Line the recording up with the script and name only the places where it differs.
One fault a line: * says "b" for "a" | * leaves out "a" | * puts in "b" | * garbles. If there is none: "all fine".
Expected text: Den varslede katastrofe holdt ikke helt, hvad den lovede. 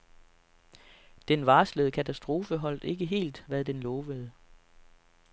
all fine